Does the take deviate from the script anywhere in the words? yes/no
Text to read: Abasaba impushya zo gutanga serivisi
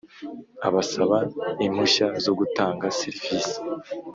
no